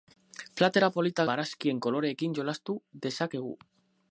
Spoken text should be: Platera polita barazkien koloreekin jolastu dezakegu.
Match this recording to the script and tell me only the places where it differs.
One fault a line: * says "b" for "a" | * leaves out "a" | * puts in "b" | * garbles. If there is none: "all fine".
all fine